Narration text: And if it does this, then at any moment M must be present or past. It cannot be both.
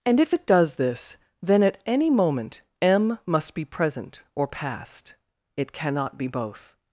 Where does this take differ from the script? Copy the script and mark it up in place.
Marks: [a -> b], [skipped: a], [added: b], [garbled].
And if it does this, then at any moment M must be present or past. It cannot be both.